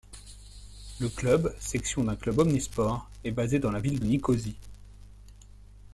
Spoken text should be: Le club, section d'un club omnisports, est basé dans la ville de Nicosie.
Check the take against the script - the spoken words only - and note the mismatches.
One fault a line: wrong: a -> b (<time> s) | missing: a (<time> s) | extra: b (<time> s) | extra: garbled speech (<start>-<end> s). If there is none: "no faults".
no faults